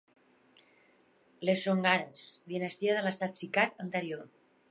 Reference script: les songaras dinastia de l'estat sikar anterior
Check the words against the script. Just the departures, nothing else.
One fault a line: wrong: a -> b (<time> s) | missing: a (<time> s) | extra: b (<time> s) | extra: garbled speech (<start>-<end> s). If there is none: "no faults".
no faults